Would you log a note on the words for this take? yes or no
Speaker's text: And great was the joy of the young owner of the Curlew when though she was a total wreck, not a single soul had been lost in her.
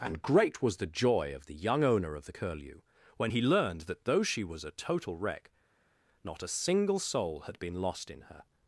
yes